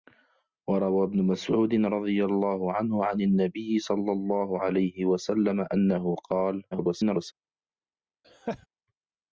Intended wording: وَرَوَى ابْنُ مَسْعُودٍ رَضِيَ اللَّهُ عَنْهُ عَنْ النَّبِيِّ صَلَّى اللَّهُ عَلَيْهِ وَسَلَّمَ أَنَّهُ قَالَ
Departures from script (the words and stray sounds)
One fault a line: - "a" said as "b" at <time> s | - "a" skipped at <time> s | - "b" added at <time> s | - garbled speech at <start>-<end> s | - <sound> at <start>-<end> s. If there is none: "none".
- garbled speech at 6.7-7.3 s
- laugh at 8.2-8.7 s